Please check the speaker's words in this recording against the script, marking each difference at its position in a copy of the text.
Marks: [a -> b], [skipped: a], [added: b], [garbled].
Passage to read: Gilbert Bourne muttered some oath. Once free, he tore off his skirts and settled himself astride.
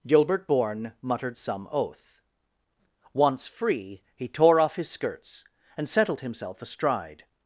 Gilbert Bourne muttered some oath. Once free, he tore off his skirts and settled himself astride.